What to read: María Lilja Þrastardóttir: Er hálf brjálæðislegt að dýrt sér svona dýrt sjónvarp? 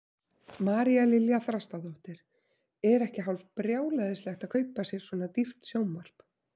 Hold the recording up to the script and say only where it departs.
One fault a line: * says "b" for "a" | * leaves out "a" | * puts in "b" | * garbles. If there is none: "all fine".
* puts in "ekki"
* says "kaupa" for "dýrt"